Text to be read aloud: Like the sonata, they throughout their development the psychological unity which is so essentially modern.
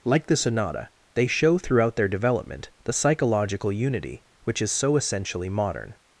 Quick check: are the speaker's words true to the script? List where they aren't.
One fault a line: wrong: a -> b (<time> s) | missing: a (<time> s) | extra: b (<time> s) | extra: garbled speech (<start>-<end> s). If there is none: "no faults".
extra: show (1.3 s)